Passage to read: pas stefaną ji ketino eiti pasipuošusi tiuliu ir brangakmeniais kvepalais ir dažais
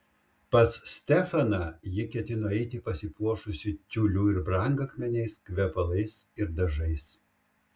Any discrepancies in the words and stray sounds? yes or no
no